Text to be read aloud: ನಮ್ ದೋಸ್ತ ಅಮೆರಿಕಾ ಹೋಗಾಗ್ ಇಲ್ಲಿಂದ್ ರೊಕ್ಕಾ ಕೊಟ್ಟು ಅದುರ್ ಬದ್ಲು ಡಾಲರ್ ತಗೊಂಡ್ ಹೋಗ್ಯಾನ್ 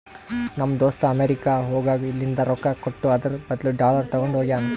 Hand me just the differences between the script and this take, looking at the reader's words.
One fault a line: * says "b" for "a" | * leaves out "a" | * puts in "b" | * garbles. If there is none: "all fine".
all fine